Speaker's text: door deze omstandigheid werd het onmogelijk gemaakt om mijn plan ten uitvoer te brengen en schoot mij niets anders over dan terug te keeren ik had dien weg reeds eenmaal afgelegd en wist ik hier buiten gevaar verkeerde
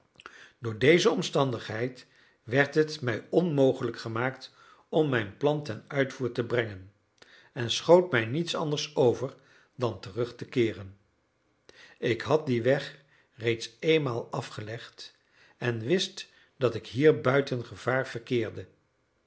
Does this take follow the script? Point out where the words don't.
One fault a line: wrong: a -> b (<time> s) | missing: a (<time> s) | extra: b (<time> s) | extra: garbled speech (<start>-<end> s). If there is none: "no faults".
extra: mij (3.0 s)
extra: dat (16.6 s)